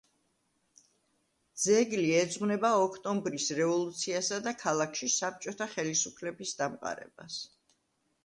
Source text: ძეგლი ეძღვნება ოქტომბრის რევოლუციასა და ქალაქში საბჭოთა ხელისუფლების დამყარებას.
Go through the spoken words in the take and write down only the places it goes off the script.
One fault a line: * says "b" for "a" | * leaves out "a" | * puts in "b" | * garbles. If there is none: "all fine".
all fine